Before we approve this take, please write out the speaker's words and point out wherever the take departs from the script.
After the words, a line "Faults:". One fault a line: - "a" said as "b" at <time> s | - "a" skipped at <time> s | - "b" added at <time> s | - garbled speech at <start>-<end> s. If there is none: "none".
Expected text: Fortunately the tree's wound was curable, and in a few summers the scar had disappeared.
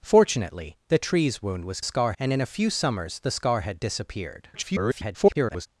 Fortunately the tree's wound was scar, and in a few summers the scar had disappeared. [garbled]
Faults:
- "curable" said as "scar" at 1.8 s
- garbled speech at 4.5-5.7 s